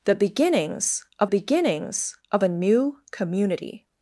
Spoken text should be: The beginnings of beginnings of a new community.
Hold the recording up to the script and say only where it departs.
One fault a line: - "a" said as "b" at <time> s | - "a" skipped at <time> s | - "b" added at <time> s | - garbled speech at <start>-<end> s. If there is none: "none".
none